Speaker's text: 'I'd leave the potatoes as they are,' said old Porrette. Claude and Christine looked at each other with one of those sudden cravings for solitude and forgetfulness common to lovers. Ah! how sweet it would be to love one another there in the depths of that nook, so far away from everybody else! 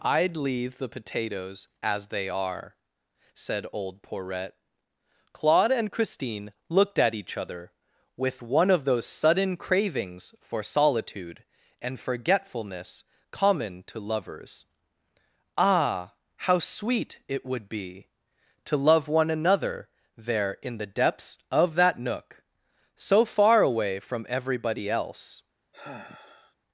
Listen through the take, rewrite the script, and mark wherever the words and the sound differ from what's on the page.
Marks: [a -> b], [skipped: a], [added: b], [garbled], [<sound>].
'I'd leave the potatoes as they are,' said old Porrette. Claude and Christine looked at each other with one of those sudden cravings for solitude and forgetfulness common to lovers. Ah! how sweet it would be to love one another there in the depths of that nook, so far away from everybody else! [sigh]